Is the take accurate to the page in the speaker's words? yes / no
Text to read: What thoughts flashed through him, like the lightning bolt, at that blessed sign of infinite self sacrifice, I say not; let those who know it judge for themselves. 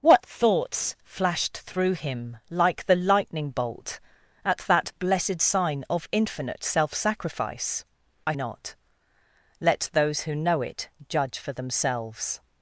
no